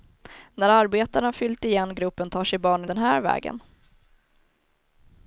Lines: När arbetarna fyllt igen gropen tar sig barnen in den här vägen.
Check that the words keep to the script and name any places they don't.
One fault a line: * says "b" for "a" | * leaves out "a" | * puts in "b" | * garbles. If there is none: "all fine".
* leaves out "in"